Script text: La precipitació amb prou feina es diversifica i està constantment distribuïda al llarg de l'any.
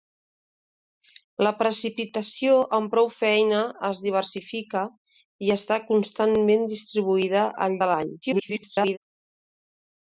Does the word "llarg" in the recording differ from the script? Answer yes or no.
yes